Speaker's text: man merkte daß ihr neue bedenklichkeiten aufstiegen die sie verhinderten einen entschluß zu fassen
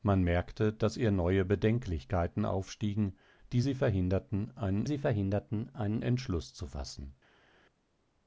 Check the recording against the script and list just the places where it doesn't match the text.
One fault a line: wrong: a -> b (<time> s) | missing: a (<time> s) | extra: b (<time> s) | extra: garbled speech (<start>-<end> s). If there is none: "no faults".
extra: sie verhinderten einen (4.8 s)